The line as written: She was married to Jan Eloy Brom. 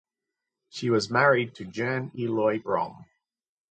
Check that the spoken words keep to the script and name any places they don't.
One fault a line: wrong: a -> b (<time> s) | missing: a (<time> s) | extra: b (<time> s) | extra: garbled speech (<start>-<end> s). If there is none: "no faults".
no faults